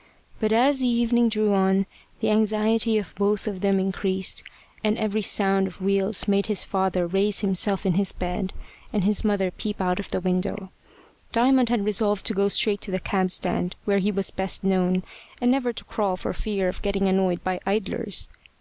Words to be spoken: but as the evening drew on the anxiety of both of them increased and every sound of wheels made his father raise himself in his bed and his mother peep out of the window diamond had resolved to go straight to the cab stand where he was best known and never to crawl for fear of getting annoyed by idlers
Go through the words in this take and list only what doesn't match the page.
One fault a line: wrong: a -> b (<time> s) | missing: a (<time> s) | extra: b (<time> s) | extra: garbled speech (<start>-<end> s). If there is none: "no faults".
no faults